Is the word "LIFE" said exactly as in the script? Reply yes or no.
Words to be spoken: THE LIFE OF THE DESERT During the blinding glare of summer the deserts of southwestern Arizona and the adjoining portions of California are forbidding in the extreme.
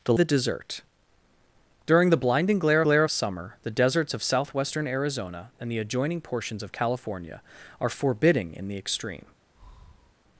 no